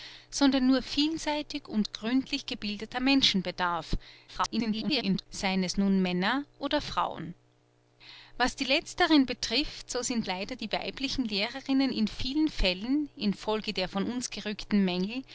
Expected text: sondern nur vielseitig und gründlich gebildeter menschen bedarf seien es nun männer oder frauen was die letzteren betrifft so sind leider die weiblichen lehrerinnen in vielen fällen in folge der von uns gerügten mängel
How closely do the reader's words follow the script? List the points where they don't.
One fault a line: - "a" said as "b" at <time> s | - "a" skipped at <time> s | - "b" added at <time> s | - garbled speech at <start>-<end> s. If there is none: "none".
- garbled speech at 4.3-5.3 s